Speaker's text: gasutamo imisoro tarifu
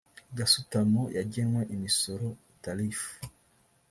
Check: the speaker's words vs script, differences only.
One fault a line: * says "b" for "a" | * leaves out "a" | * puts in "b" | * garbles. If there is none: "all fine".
* puts in "yagenwe"